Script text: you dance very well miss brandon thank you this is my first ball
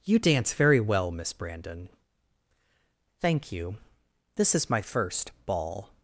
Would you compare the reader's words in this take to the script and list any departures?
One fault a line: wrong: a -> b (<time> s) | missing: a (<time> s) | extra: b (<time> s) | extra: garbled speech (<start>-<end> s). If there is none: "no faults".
no faults